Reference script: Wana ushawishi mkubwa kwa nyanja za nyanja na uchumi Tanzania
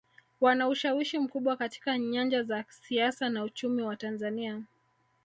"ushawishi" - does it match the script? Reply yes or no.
yes